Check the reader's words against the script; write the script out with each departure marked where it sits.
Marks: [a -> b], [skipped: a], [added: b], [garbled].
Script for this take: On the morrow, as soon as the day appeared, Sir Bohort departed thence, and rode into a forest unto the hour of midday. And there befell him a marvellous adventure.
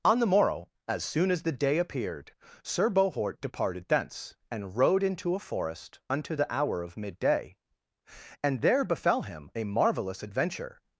On the morrow, as soon as the day appeared, Sir Bohort departed thence, and rode into a forest unto the hour of midday. And there befell him a marvellous adventure.